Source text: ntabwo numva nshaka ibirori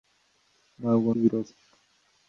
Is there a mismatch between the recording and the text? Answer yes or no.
yes